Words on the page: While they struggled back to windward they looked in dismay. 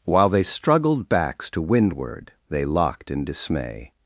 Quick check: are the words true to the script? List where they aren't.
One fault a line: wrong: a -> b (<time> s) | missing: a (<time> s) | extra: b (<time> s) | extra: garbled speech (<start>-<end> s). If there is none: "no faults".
wrong: back -> backs (1.1 s)
wrong: looked -> locked (2.6 s)